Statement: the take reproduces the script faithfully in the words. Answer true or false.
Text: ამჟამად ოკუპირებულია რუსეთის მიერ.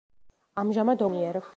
false